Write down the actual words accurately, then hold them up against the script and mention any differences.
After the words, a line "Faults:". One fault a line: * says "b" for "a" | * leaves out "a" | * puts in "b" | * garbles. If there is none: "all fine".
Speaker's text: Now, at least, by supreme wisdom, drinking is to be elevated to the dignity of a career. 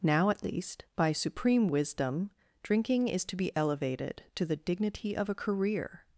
Now, at least, by supreme wisdom, drinking is to be elevated to the dignity of a career.
Faults:
all fine